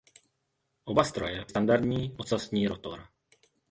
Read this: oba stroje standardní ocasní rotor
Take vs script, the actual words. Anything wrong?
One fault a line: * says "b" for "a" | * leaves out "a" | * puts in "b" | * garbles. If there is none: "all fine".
all fine